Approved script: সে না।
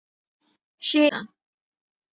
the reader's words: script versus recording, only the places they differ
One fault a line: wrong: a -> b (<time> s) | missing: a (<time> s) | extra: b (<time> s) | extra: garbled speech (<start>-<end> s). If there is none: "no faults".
no faults